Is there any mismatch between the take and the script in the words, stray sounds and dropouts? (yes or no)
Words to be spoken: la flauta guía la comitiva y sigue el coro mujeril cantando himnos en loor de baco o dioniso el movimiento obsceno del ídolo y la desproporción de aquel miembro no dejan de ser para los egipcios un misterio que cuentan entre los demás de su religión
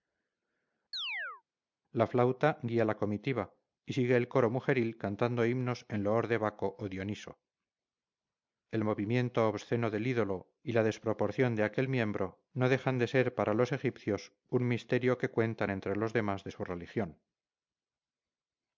yes